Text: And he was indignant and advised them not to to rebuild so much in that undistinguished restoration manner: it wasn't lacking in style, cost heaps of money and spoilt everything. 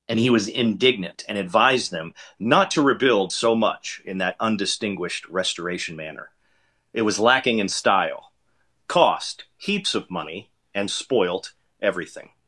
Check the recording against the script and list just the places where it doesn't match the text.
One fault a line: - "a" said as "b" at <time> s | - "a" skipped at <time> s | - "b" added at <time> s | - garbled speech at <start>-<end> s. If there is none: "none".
- "to" skipped at 2.8 s
- "wasn't" said as "was" at 7.0 s